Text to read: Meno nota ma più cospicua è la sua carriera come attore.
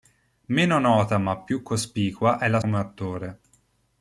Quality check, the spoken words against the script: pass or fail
fail